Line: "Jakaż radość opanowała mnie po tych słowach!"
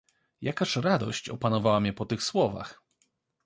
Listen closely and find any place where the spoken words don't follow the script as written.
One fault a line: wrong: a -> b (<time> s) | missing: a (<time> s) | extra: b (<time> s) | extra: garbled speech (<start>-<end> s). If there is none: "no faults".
no faults